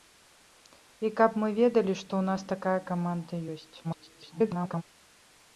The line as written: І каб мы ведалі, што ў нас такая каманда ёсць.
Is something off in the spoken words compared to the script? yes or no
yes